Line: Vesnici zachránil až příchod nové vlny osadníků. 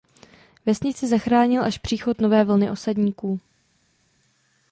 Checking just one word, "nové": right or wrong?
right